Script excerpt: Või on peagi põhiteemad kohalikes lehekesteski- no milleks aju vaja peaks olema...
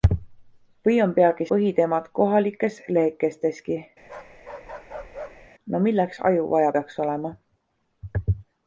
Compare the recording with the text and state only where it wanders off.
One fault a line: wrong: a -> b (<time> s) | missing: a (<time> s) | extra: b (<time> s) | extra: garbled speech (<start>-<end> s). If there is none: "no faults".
no faults